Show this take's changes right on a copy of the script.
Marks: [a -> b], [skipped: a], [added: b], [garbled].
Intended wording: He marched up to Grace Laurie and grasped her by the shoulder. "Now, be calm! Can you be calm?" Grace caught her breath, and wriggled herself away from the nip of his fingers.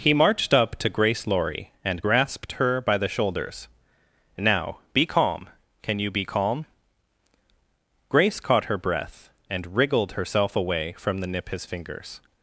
He marched up to Grace Laurie and grasped her by the [shoulder. -> shoulders] "Now, be calm! Can you be calm?" Grace caught her breath, and wriggled herself away from the nip [skipped: of] his fingers.